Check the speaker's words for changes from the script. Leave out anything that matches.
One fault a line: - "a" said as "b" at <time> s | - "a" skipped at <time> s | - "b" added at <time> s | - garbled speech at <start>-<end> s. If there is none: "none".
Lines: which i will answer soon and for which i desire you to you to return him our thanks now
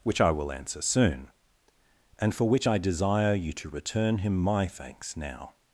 - "you to" skipped at 3.7 s
- "our" said as "my" at 4.4 s